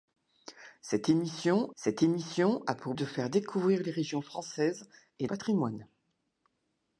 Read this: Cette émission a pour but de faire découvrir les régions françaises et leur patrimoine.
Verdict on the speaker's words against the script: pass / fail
fail